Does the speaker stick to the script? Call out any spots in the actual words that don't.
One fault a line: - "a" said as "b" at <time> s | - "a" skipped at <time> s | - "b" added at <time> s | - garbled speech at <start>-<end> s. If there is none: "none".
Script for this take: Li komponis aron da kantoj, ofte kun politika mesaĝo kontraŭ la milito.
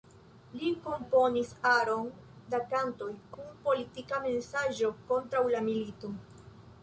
- "ofte" skipped at 3.1 s